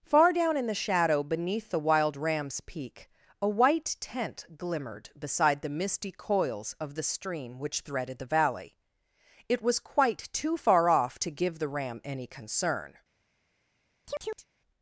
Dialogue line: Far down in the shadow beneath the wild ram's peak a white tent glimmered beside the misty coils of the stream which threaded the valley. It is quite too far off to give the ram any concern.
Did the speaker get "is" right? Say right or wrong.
wrong